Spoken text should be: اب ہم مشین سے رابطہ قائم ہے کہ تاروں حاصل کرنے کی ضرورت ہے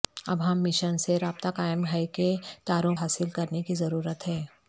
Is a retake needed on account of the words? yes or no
no